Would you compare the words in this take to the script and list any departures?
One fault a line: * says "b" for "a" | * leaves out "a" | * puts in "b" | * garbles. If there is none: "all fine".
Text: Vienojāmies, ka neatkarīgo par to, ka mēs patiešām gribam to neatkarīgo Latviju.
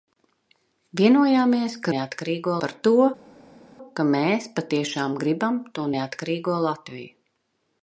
all fine